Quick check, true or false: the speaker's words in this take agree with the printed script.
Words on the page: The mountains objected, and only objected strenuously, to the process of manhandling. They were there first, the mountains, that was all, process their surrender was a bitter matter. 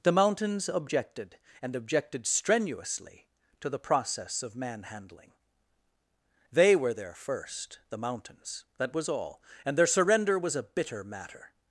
false